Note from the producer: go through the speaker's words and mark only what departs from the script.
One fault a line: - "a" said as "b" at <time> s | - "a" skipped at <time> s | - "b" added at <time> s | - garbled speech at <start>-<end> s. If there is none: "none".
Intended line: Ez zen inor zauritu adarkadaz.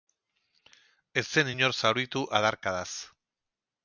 none